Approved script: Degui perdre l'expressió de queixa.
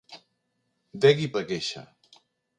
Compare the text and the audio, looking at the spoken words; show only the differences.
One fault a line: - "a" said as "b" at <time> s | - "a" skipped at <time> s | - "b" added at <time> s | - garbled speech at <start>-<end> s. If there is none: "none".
- "perdre l'expressió" skipped at 1.3 s